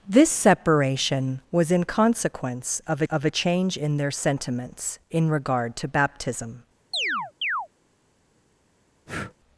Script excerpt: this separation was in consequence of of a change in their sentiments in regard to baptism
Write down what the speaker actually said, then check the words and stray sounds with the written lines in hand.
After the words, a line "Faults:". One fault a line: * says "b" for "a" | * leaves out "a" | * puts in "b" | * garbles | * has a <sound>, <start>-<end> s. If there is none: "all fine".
this separation was in consequence of of a change in their sentiments in regard to baptism
Faults:
* has a chirp, 6.9-7.7 s
* has a breath, 9.1-9.3 s